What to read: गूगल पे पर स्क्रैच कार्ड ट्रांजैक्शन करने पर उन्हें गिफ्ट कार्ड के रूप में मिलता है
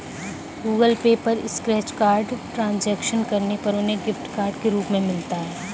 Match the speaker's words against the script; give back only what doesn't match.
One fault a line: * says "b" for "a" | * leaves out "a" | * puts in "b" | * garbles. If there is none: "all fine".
all fine